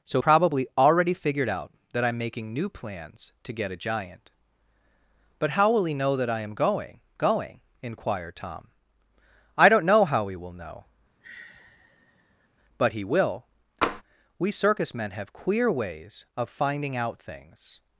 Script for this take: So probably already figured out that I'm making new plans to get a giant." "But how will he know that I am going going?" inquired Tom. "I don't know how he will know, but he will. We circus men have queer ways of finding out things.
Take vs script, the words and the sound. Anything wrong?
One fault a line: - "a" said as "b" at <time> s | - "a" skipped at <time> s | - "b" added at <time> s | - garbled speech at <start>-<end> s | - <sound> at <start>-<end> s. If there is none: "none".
- sigh at 11.2-12.5 s
- tap at 13.8-14.0 s